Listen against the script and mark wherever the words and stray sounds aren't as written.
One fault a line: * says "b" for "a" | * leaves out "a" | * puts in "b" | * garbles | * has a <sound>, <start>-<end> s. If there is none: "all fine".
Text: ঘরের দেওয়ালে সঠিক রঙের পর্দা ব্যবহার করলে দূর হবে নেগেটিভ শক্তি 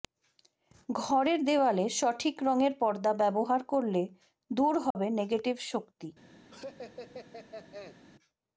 * has a dropout, 4.9-5.0 s
* has a laugh, 6.5-8.0 s